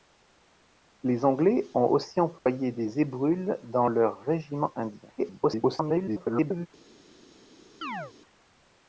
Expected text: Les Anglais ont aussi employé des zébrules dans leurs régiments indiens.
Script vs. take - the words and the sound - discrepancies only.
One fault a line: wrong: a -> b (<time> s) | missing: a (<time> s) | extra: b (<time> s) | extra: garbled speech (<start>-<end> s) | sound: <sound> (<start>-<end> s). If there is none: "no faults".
sound: dropout (2.4-2.5 s)
extra: garbled speech (5.2-6.7 s)
sound: chirp (7.8-8.1 s)